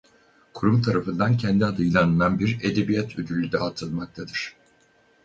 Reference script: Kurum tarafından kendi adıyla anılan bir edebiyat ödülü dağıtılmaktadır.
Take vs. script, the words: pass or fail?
pass